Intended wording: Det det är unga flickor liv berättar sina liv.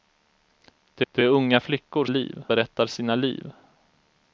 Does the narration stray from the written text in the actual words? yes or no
no